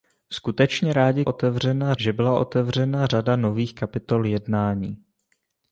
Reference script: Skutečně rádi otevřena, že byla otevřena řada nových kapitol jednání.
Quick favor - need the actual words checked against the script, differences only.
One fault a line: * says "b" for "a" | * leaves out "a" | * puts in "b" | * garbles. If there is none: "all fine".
all fine